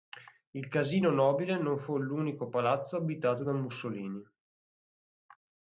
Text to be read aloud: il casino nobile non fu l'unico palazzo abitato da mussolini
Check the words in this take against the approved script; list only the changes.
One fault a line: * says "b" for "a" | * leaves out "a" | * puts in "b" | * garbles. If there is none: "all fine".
all fine